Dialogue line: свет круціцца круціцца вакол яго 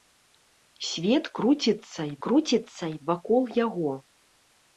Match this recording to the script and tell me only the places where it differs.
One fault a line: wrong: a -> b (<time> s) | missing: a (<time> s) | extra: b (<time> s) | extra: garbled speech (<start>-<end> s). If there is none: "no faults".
no faults